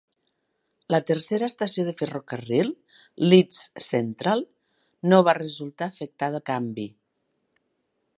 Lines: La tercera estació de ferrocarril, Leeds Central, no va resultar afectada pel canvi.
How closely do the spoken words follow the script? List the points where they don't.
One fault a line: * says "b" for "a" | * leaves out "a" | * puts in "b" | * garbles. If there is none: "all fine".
* leaves out "pel"